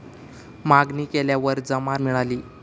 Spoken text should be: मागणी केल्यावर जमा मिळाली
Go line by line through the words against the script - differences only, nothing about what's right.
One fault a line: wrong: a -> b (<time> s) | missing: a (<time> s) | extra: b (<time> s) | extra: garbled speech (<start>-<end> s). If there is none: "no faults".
no faults